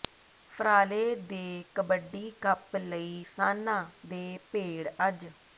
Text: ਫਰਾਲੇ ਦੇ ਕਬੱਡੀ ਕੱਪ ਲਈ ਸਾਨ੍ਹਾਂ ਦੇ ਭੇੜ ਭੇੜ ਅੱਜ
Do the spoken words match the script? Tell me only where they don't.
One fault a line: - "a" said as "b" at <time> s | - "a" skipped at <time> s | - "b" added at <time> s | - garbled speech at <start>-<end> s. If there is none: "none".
- "ਭੇੜ" skipped at 4.9 s